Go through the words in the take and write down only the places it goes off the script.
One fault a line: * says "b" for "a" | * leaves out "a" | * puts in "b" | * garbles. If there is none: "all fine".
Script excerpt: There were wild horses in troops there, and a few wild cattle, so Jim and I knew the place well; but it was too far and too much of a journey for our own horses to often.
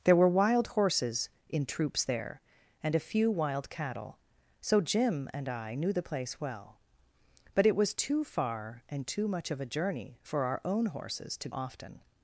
all fine